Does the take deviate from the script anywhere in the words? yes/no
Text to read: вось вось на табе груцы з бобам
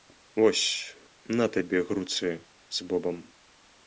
yes